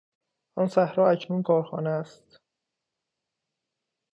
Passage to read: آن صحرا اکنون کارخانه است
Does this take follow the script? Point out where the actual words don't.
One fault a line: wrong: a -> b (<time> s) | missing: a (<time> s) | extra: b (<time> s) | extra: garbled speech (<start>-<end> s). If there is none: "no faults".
no faults